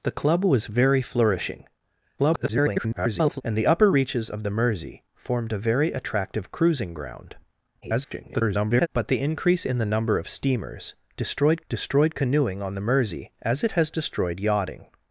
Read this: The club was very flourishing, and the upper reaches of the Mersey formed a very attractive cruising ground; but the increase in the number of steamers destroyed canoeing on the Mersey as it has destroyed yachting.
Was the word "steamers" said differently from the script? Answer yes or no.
no